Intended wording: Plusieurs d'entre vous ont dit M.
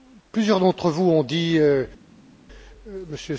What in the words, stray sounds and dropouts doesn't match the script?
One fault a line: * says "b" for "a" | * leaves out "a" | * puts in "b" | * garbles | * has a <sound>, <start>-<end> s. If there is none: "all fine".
all fine